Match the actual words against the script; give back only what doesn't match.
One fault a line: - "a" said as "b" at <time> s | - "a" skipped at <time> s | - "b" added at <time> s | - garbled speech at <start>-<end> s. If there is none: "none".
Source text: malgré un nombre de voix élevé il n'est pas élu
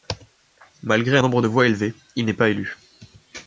none